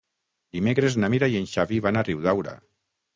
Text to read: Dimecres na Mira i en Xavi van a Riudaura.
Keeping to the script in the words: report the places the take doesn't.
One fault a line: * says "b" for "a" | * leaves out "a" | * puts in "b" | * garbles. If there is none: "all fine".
all fine